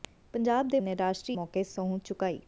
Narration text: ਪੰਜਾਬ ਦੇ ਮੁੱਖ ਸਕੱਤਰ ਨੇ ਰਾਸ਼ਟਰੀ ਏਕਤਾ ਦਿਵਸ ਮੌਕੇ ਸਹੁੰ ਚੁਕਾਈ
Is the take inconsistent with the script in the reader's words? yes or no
yes